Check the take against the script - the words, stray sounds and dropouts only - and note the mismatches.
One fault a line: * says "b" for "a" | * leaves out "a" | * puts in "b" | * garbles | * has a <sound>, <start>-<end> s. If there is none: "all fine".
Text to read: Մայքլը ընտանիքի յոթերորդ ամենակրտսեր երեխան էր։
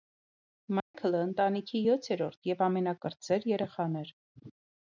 * has a dropout, 0.8-0.9 s
* puts in "և"